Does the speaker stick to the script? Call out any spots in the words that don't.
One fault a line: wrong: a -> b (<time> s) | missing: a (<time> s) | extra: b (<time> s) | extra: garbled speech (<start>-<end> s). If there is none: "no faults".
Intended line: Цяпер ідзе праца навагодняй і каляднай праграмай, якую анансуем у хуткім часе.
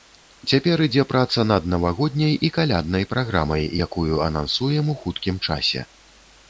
extra: над (1.5 s)